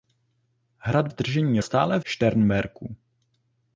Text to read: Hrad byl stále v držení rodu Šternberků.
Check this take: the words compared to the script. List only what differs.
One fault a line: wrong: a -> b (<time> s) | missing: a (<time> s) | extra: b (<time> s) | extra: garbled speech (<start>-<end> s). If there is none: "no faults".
missing: byl stále (1.1 s)
wrong: rodu -> stále (1.6 s)